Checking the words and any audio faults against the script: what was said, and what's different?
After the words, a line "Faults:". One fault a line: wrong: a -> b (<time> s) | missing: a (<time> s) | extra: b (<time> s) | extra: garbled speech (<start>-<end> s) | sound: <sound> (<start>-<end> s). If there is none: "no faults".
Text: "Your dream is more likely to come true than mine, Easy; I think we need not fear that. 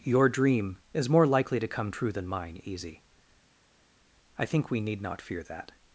"Your dream is more likely to come true than mine, Easy; I think we need not fear that.
Faults:
no faults